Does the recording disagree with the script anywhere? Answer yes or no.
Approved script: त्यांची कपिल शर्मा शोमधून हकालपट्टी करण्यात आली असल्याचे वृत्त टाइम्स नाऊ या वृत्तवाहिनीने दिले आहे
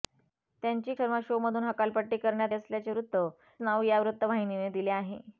yes